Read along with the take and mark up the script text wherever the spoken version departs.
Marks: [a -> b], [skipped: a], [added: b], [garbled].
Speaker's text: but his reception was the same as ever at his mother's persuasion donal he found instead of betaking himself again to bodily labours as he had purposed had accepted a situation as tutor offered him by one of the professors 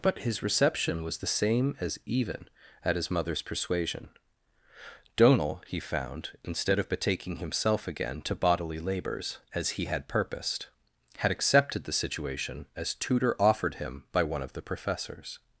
but his reception was the same as [ever -> even] at his mother's persuasion donal he found instead of betaking himself again to bodily labours as he had purposed had accepted [a -> the] situation as tutor offered him by one of the professors